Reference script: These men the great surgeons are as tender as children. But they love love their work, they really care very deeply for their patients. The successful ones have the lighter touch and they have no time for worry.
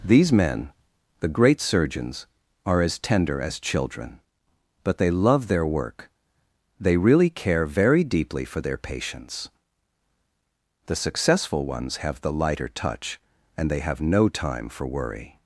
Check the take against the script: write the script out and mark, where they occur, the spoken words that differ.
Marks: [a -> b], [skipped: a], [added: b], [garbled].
These men the great surgeons are as tender as children. But they love [skipped: love] their work, they really care very deeply for their patients. The successful ones have the lighter touch and they have no time for worry.